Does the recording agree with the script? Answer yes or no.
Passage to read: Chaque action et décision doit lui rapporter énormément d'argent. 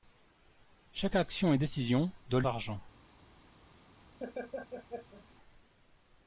no